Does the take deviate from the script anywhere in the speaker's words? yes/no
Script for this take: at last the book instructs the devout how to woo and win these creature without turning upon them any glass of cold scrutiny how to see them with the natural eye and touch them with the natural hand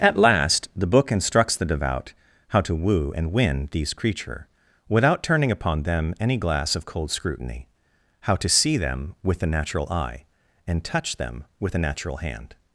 no